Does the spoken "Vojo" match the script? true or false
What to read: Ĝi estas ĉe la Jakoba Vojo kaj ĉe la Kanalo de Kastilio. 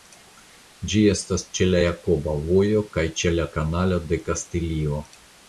true